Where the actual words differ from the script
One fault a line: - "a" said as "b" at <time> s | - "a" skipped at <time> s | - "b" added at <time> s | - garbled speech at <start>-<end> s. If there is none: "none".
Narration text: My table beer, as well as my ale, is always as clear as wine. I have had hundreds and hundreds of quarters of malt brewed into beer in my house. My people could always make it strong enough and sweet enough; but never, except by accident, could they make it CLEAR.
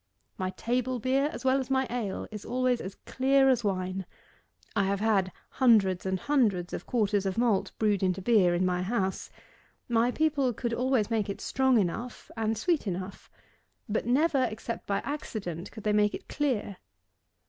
none